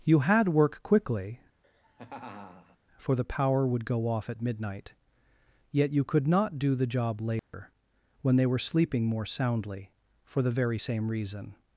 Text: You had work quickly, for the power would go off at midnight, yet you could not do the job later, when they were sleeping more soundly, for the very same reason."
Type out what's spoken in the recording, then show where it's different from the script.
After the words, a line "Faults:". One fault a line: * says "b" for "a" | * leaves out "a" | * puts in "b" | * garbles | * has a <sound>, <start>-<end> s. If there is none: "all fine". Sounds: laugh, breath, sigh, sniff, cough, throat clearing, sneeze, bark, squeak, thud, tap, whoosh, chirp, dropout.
You had work quickly, for the power would go off at midnight, yet you could not do the job later, when they were sleeping more soundly, for the very same reason."
Faults:
* has a laugh, 1.6-2.8 s
* has a dropout, 7.4-7.5 s